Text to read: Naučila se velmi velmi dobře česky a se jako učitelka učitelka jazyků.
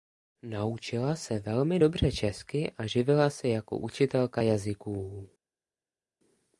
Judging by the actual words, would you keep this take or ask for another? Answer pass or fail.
fail